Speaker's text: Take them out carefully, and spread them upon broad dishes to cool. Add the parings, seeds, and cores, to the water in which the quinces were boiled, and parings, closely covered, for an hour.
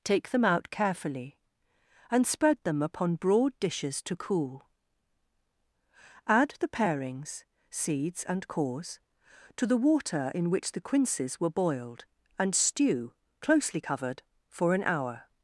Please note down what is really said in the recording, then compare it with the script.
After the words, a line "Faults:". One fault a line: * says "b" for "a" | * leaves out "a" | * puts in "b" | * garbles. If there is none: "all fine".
Take them out carefully, and spread them upon broad dishes to cool. Add the parings, seeds, and cores, to the water in which the quinces were boiled, and stew, closely covered, for an hour.
Faults:
* says "stew" for "parings"